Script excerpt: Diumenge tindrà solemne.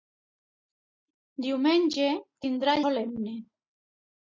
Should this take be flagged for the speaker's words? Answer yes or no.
no